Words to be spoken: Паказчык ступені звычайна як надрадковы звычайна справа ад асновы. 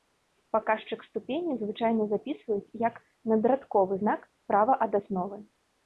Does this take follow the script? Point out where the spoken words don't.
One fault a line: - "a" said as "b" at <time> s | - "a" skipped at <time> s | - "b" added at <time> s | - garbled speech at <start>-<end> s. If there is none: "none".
- "запісваюць" added at 2.1 s
- "звычайна" said as "знак" at 4.0 s